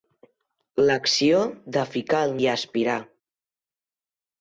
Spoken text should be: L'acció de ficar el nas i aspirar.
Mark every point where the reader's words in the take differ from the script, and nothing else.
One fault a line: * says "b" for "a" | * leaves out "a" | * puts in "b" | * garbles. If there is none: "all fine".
* leaves out "nas"